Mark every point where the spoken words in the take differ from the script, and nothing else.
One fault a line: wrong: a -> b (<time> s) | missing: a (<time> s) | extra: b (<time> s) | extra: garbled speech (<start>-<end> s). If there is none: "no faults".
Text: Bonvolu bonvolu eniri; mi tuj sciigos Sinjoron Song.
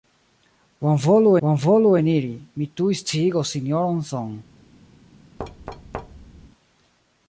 no faults